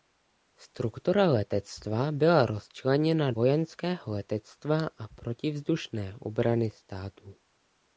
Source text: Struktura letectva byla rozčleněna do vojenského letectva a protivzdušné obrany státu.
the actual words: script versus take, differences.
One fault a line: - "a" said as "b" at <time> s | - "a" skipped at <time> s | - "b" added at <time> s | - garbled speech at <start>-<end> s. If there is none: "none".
- "do" skipped at 3.3 s